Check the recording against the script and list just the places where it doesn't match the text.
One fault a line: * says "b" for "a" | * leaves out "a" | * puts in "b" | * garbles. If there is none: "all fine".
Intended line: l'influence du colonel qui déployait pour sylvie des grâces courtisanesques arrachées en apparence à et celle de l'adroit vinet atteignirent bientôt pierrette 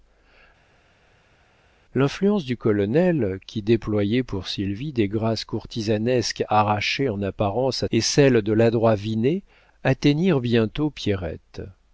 all fine